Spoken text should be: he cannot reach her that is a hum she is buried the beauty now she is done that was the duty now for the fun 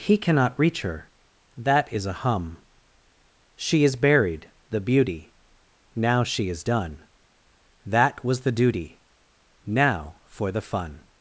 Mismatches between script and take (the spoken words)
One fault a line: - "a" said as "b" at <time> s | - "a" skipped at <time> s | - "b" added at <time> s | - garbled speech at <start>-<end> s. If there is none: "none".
none